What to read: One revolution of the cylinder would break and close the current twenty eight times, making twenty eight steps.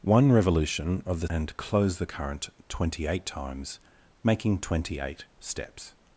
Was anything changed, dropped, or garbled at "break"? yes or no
yes